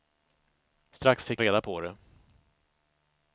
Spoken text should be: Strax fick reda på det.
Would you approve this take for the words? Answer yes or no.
yes